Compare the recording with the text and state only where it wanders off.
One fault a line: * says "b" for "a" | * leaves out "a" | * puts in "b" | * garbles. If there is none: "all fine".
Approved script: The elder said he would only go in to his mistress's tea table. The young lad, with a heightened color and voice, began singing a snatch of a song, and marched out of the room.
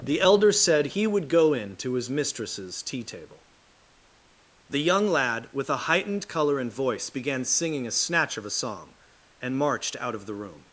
* leaves out "only"